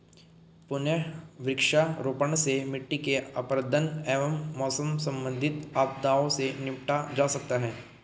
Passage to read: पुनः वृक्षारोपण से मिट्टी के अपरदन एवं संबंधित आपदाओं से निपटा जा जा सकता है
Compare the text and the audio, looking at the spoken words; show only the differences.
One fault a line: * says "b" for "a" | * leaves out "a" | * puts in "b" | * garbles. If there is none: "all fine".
* puts in "मौसम"
* leaves out "जा"